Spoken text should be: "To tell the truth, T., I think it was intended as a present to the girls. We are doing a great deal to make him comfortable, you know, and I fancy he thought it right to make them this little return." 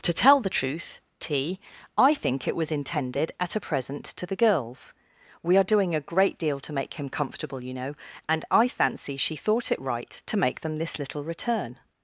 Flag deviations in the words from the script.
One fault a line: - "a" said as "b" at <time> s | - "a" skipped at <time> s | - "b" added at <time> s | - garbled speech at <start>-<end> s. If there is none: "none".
- "as" said as "at" at 3.4 s
- "he" said as "she" at 9.2 s